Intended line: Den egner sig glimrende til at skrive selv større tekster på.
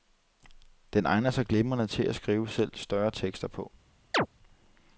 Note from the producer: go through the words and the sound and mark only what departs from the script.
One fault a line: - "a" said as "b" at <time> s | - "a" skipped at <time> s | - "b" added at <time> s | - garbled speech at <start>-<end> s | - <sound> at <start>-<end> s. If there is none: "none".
- chirp at 4.1-4.3 s